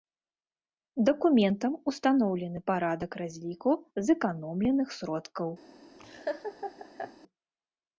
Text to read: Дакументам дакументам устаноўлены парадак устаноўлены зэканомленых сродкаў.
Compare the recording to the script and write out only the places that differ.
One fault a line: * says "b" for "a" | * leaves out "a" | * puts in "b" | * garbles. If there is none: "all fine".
* leaves out "дакументам"
* says "разліку" for "устаноўлены"